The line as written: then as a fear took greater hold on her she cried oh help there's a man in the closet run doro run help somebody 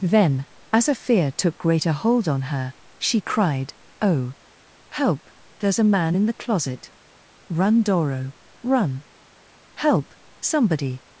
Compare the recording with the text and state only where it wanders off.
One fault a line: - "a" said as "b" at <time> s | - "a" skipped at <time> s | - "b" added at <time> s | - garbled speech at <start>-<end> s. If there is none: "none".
none